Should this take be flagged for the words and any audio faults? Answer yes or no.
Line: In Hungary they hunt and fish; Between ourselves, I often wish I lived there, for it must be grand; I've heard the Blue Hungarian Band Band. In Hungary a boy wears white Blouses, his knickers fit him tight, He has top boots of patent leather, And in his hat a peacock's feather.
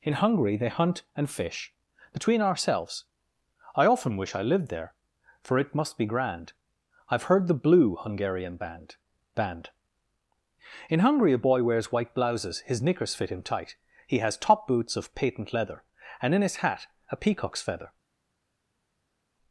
no